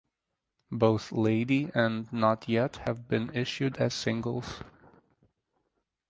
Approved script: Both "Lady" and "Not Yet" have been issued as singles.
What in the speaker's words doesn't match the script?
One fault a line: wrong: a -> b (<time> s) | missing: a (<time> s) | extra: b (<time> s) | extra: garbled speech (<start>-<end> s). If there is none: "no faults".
no faults